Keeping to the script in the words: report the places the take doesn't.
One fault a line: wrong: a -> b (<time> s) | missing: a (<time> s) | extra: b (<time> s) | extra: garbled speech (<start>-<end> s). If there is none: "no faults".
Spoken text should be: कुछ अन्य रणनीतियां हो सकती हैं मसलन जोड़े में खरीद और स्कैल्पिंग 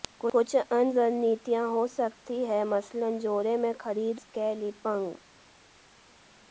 missing: और (4.2 s)